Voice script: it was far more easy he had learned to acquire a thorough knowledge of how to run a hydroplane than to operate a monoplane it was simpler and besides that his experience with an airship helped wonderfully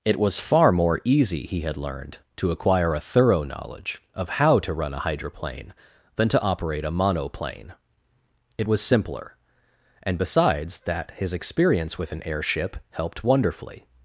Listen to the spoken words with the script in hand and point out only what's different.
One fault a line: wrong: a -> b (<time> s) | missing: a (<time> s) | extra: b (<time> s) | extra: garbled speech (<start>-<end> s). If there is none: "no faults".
no faults